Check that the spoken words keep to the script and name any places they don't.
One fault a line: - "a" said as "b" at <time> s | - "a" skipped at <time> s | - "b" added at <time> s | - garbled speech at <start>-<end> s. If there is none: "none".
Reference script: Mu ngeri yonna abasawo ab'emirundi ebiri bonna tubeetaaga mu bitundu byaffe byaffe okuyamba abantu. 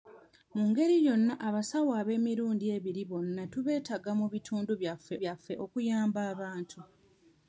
none